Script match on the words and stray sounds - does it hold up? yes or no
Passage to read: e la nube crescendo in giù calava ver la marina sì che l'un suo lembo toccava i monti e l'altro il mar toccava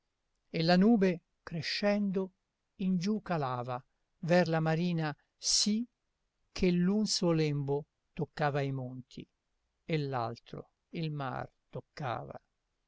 yes